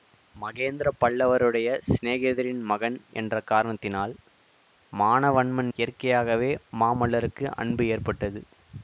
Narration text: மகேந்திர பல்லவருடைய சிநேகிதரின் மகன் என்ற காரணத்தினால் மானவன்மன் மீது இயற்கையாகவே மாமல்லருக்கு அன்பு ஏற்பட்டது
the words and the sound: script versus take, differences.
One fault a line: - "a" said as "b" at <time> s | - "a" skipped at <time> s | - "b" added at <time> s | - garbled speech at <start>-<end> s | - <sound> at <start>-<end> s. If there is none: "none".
- "மீது" skipped at 5.7 s